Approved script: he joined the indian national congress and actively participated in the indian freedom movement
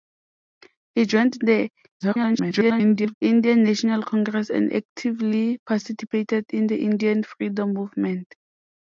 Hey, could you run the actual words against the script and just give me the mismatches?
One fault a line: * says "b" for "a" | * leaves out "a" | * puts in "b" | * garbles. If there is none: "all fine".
* garbles